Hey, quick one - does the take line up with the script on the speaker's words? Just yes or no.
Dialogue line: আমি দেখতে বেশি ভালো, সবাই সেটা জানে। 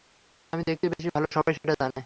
yes